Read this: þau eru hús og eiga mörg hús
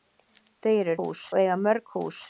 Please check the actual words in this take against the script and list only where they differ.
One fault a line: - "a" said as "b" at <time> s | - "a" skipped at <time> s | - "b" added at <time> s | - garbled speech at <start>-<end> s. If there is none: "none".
none